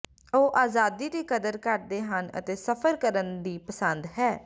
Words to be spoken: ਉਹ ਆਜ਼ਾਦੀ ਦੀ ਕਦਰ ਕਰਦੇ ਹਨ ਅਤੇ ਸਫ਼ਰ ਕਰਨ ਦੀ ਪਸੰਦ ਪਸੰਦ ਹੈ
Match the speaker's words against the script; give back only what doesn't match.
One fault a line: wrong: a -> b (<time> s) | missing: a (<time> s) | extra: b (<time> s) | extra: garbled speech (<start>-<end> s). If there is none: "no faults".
missing: ਪਸੰਦ (4.1 s)